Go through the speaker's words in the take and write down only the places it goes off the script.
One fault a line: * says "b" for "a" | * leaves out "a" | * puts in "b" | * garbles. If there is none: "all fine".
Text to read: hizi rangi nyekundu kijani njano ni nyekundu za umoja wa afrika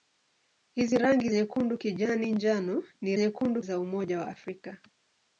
all fine